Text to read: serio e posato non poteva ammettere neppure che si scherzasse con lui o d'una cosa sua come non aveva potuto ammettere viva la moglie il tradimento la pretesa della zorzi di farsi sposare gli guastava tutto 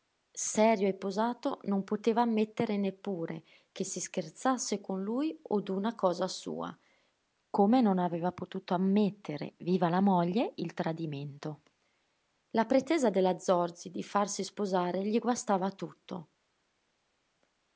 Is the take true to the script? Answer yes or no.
yes